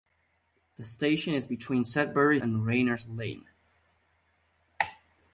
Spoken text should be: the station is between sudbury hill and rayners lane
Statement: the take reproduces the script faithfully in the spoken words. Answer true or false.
false